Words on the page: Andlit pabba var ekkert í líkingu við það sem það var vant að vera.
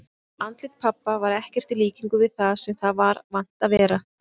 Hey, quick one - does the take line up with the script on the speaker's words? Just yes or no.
yes